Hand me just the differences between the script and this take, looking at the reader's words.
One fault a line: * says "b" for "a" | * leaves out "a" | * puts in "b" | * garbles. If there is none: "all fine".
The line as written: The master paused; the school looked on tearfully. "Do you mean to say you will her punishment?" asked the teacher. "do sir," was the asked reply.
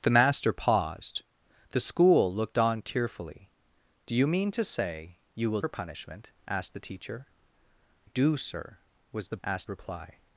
all fine